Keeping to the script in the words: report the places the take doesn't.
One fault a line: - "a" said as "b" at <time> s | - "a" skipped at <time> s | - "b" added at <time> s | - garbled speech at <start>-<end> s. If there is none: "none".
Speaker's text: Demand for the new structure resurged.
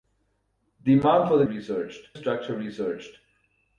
- "new" said as "resurged" at 1.5 s